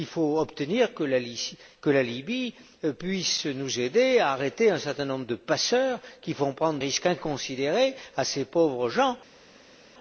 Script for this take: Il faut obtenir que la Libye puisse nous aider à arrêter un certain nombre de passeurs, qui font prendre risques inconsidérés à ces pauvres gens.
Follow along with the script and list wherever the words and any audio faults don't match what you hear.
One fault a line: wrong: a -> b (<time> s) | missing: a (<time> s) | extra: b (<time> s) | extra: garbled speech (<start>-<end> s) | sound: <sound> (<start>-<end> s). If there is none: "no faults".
no faults